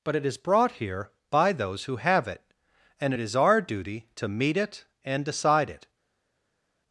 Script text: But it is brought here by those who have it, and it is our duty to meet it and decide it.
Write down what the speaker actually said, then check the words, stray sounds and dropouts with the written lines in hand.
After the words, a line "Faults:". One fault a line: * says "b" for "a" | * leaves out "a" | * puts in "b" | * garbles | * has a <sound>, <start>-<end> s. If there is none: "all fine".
But it is brought here by those who have it, and it is our duty to meet it and decide it.
Faults:
all fine